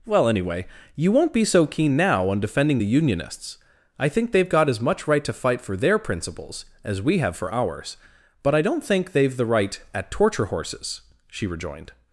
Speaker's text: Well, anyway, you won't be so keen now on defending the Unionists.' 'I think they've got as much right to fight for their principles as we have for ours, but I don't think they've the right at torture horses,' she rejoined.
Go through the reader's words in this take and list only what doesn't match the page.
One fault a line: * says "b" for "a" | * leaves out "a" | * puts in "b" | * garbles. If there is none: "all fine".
all fine